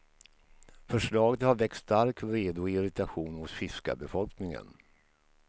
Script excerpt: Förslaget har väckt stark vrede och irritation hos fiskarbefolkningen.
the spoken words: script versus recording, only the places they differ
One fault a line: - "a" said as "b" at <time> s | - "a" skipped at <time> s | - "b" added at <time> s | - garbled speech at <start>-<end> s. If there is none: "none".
none